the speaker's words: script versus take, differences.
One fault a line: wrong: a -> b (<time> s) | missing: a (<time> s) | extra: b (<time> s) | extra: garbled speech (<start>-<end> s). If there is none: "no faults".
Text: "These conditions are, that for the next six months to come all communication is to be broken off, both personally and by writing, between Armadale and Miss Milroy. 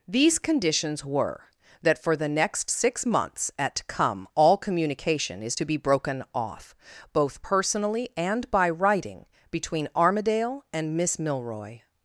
wrong: are -> were (1.1 s)
wrong: to -> at (3.6 s)